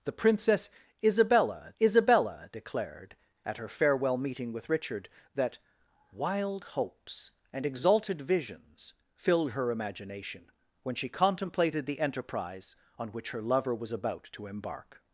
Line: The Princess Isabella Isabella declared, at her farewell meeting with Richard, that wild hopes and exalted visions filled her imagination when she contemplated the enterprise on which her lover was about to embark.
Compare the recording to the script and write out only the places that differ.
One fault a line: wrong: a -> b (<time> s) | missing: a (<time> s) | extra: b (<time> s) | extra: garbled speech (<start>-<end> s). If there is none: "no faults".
no faults